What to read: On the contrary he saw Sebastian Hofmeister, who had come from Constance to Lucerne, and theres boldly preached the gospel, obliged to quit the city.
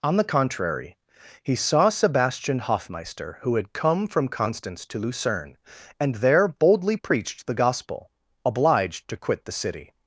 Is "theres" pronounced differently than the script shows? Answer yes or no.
yes